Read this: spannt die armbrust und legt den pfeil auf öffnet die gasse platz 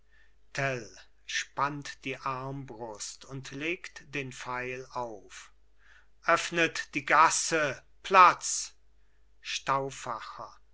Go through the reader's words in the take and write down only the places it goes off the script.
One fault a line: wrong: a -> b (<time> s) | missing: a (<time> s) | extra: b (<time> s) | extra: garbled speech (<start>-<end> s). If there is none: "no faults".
no faults